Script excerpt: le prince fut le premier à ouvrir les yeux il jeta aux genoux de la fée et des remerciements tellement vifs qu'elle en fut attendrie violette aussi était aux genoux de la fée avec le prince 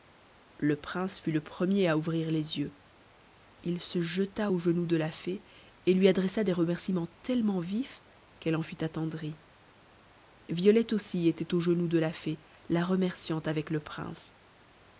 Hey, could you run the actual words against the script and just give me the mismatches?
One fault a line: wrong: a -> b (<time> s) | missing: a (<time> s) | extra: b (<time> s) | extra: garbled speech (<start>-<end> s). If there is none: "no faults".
extra: se (3.8 s)
extra: lui adressa (5.9 s)
extra: la remerciant (12.7 s)